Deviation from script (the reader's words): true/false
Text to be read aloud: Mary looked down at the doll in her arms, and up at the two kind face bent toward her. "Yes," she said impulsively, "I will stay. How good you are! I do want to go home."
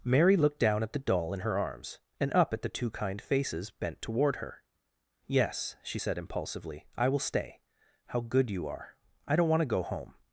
true